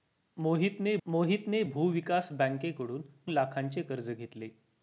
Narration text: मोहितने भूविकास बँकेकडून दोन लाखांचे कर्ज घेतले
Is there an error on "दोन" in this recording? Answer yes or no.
yes